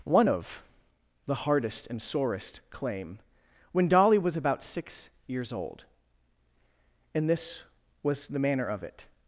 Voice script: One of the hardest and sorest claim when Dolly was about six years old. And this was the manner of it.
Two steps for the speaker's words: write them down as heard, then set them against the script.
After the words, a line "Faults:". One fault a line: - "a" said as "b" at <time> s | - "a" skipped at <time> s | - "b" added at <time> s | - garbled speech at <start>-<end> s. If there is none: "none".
One of the hardest and sorest claim when Dolly was about six years old. And this was the manner of it.
Faults:
none